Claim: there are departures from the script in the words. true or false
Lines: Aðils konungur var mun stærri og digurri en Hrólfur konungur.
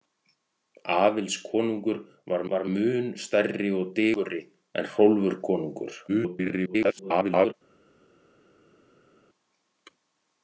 true